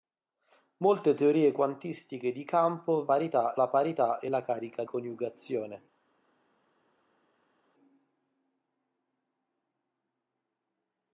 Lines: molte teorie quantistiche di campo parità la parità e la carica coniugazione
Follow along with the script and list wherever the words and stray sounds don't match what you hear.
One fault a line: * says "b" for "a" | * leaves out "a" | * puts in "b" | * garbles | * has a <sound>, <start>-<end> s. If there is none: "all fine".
all fine